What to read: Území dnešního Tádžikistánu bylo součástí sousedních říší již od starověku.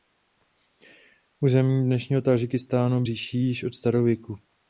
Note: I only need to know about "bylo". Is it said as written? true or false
false